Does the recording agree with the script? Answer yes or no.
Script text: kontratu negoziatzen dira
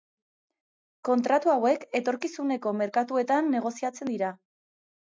no